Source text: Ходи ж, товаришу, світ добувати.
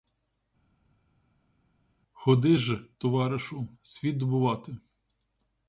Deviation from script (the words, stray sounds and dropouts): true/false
false